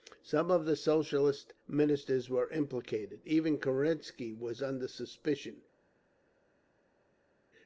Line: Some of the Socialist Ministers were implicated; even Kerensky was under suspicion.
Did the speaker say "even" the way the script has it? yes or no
yes